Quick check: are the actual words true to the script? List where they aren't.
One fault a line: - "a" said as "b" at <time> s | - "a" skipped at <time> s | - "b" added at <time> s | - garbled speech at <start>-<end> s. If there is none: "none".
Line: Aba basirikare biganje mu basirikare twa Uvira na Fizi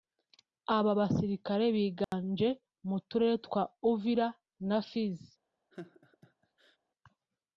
- "basirikare" said as "turere" at 3.1 s